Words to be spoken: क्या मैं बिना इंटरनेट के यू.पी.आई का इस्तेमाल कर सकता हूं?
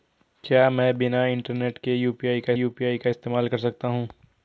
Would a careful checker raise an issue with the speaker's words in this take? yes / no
yes